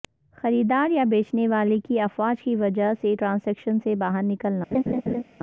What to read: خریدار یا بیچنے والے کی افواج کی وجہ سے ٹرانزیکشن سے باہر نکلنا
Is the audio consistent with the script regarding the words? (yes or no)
yes